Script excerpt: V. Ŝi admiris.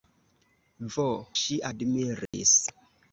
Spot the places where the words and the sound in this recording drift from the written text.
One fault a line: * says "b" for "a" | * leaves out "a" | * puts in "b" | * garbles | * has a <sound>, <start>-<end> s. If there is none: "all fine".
* has a dropout, 2.3-2.3 s